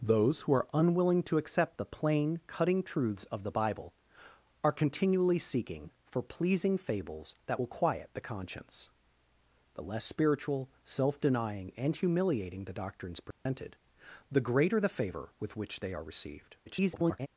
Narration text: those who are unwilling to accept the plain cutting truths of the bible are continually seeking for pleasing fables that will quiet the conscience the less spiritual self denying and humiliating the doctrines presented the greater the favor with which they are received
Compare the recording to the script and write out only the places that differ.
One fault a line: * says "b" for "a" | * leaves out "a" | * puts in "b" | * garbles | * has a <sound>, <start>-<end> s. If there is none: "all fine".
* has a dropout, 13.3-13.5 s
* garbles